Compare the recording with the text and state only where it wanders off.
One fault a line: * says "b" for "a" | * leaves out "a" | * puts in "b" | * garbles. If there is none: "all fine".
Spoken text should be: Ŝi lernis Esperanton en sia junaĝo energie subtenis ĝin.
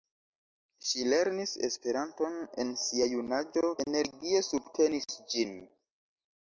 all fine